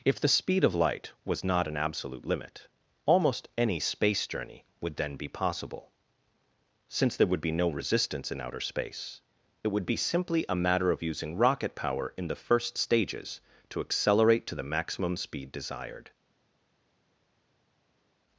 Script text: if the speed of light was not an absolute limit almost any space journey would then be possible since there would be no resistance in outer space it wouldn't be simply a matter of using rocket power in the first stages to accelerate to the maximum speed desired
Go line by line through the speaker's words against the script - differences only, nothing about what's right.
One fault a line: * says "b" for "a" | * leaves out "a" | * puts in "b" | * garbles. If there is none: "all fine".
* says "would" for "wouldn't"